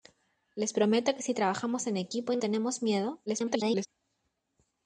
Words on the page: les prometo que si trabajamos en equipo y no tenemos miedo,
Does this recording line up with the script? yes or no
no